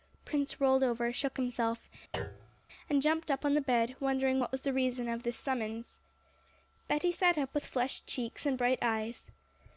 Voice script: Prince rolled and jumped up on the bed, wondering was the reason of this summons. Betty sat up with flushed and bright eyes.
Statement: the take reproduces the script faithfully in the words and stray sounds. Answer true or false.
false